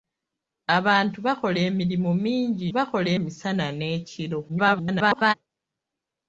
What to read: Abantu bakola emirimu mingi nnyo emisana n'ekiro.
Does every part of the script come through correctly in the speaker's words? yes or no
no